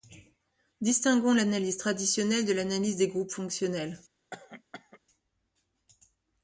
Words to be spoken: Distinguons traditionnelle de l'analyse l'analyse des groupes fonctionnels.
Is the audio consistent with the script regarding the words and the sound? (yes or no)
no